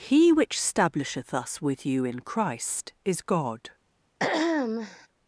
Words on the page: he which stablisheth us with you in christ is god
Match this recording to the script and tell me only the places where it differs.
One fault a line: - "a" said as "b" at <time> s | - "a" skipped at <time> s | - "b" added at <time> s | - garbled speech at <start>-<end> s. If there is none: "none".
none